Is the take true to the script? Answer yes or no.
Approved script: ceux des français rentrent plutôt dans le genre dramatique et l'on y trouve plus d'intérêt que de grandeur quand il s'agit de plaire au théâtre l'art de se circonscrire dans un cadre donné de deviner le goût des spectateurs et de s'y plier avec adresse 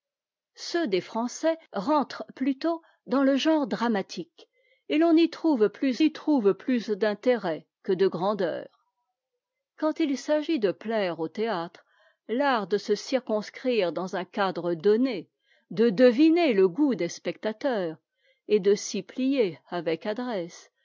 no